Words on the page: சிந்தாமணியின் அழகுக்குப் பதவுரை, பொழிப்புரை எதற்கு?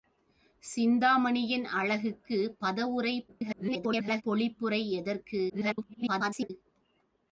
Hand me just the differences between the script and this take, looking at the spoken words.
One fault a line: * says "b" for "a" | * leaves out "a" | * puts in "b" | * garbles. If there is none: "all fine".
* garbles
* garbles